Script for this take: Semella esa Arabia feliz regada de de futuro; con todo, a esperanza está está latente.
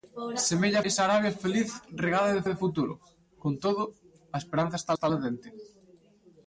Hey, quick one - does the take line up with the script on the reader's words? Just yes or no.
yes